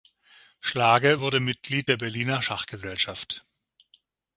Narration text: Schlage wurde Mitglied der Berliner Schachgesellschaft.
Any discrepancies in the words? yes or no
no